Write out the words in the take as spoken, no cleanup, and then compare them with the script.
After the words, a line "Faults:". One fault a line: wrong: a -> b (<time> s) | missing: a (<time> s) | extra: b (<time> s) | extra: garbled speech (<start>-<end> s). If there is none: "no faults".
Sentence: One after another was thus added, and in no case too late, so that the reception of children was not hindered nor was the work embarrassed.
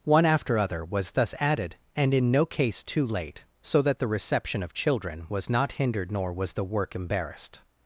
One after other was thus added, and in no case too late, so that the reception of children was not hindered nor was the work embarrassed.
Faults:
wrong: another -> other (0.6 s)